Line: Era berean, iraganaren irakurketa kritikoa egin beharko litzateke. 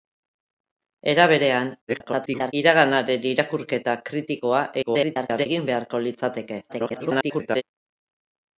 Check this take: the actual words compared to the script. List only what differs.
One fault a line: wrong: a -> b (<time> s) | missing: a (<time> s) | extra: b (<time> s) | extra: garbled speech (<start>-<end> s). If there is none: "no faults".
extra: garbled speech (1.9-2.5 s)
extra: garbled speech (4.8-5.5 s)
extra: garbled speech (6.7-7.6 s)